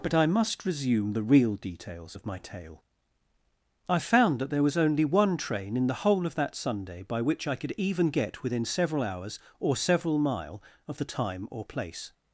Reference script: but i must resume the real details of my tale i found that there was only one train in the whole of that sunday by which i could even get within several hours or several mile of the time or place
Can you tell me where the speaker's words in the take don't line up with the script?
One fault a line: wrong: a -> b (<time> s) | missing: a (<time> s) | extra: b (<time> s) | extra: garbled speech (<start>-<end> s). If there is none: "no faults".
no faults